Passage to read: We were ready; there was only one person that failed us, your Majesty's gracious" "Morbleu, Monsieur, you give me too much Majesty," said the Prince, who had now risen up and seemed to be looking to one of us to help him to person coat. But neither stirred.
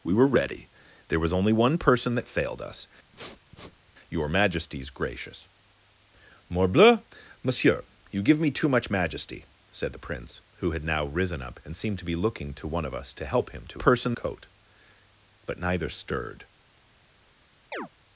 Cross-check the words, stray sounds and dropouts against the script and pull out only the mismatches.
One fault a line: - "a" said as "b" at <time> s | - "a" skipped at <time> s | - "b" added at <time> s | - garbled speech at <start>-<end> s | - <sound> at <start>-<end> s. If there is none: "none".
- sniff at 3.1-3.9 s
- chirp at 17.7-17.9 s